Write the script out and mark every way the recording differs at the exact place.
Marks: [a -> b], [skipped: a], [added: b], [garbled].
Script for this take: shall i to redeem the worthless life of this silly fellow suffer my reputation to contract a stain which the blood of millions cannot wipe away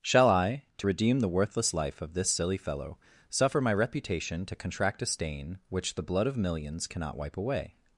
shall i to redeem the worthless life of this silly fellow suffer my reputation to contract a stain which the blood of millions cannot wipe away